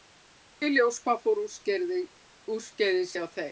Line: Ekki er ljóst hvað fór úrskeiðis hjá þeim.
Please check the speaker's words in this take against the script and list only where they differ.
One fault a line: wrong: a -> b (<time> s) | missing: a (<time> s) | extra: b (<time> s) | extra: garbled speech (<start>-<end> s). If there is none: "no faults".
no faults